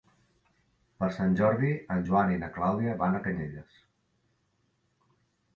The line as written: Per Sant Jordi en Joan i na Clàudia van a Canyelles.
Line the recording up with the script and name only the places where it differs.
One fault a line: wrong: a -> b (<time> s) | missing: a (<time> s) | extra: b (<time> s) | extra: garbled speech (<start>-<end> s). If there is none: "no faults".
no faults